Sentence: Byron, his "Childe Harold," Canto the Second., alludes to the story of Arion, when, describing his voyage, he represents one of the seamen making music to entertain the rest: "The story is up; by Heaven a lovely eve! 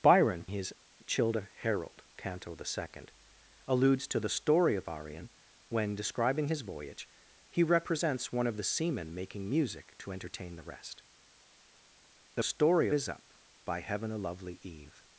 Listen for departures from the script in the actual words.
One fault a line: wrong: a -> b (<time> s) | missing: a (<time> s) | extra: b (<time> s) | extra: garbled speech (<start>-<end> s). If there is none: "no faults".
no faults